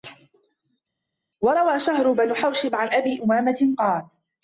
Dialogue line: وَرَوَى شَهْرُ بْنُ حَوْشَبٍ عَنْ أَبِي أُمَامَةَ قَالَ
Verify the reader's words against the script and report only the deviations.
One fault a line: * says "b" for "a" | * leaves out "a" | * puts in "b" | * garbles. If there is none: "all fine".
all fine